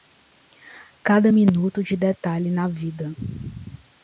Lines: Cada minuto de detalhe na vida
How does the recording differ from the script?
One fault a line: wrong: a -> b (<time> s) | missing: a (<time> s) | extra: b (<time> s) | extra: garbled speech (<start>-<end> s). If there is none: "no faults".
no faults